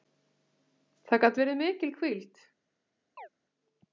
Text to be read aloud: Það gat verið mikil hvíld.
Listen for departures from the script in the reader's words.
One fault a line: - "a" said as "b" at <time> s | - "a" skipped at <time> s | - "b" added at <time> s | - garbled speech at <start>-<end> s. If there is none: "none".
none